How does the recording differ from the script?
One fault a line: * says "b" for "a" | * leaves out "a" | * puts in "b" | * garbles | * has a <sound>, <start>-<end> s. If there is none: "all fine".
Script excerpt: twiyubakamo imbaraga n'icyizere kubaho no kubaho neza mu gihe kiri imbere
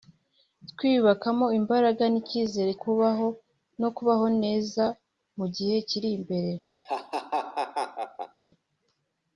* has a laugh, 6.8-8.4 s